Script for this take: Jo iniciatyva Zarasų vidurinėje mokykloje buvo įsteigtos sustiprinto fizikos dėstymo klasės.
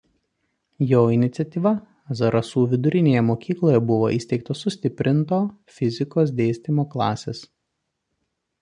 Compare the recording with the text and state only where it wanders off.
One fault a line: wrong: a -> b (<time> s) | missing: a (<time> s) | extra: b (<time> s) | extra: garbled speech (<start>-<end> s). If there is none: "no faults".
no faults